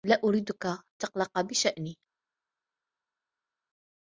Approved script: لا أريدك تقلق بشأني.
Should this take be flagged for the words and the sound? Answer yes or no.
no